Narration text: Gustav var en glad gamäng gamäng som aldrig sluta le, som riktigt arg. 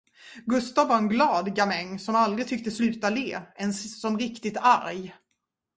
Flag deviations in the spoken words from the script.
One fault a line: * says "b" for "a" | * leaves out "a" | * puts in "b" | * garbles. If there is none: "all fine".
* leaves out "gamäng"
* puts in "tycktes"
* puts in "ens"